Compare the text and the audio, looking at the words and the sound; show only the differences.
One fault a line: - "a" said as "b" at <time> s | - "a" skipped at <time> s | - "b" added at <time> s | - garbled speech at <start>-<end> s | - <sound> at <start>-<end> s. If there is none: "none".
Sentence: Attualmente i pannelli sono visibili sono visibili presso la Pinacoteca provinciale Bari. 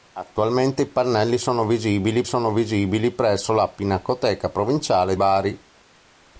none